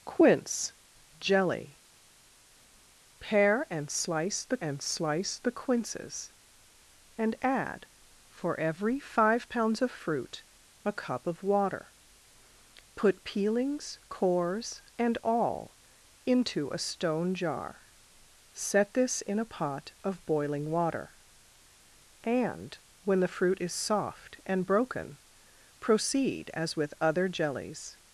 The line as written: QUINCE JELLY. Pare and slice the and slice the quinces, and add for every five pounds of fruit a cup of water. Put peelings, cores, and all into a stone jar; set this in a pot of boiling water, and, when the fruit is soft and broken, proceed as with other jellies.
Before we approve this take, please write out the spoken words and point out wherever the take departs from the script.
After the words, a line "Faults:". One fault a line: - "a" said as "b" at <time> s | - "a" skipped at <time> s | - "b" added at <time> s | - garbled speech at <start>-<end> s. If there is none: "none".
QUINCE JELLY. Pare and slice the and slice the quinces, and add for every five pounds of fruit a cup of water. Put peelings, cores, and all into a stone jar; set this in a pot of boiling water, and, when the fruit is soft and broken, proceed as with other jellies.
Faults:
none